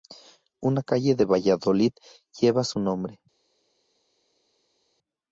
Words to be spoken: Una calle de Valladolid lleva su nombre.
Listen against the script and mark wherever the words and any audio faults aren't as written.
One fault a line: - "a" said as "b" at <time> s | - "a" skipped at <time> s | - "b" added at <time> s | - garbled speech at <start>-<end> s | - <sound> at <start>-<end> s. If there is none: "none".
none